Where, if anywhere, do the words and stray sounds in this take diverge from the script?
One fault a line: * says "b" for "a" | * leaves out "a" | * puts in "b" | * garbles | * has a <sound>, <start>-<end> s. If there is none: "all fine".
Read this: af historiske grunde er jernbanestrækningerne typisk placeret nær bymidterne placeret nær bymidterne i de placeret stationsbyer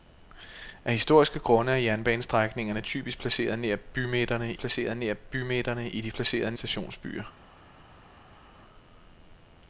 all fine